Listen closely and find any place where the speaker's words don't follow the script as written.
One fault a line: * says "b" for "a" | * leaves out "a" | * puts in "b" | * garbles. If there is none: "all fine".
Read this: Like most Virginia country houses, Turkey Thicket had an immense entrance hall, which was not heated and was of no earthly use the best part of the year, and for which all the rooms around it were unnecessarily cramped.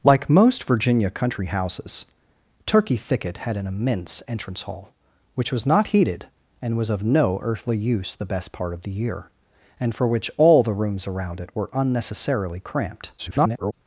* garbles